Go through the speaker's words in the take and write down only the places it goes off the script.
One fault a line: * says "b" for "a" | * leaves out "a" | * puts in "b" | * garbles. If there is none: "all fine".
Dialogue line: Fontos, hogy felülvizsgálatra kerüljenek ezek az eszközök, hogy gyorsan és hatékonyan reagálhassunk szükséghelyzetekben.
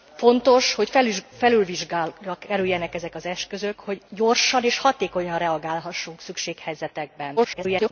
* garbles